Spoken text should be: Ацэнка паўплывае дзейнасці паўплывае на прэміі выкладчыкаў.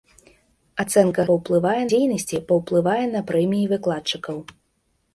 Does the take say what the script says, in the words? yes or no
yes